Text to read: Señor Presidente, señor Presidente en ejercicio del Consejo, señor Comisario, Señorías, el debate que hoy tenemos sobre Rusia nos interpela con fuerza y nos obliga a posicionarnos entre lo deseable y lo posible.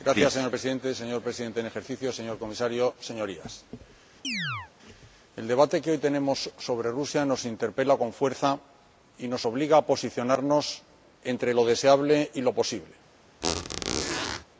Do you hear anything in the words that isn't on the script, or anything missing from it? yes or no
no